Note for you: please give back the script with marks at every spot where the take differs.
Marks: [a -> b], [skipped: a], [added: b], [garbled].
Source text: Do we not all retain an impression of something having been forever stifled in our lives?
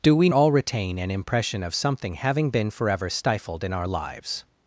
Do we [skipped: not] all retain an impression of something having been forever stifled in our lives?